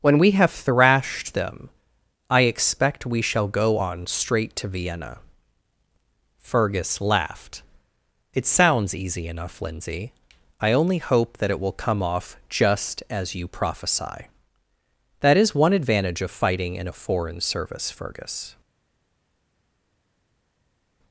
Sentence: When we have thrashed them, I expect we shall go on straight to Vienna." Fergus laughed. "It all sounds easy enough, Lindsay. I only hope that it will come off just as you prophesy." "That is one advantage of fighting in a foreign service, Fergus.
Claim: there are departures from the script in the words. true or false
true